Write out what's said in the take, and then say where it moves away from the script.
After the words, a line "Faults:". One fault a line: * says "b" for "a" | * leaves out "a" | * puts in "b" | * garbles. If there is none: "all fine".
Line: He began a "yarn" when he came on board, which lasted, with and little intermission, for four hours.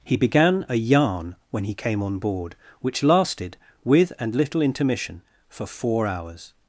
He began a "yarn" when he came on board, which lasted, with and little intermission, for four hours.
Faults:
all fine